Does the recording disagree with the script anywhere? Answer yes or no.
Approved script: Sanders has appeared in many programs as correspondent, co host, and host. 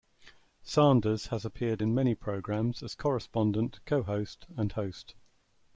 no